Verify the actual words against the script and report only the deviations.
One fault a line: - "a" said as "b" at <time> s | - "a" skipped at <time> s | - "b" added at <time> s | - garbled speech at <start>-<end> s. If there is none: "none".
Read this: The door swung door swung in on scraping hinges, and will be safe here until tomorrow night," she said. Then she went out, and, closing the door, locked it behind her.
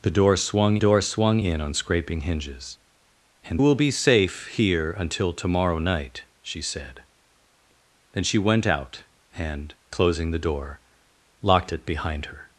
none